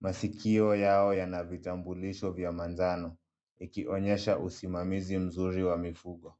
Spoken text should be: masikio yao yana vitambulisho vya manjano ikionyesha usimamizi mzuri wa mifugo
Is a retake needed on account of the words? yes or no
no